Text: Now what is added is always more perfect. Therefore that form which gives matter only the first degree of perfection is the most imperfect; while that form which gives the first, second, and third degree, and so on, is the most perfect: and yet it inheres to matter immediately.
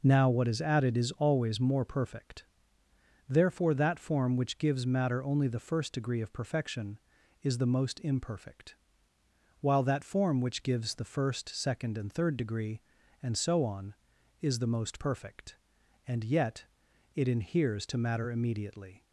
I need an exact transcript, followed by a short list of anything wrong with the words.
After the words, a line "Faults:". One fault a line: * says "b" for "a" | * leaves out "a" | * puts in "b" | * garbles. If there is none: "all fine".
Now what is added is always more perfect. Therefore that form which gives matter only the first degree of perfection is the most imperfect; while that form which gives the first, second, and third degree, and so on, is the most perfect: and yet it inheres to matter immediately.
Faults:
all fine